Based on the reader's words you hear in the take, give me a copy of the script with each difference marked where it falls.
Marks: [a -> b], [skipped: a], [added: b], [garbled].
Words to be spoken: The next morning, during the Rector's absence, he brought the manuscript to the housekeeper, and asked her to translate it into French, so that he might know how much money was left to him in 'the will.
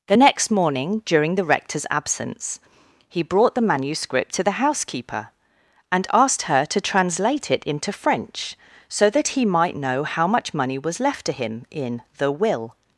The next morning, during the Rector's absence, he brought the manuscript to the housekeeper, and asked her to translate it into French, so that he might know how much money was left to him in 'the will.